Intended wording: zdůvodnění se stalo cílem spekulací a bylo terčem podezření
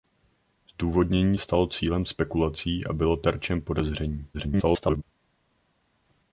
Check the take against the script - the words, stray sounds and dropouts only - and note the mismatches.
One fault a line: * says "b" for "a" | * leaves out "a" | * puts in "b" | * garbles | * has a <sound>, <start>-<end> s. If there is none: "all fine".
* leaves out "se"
* garbles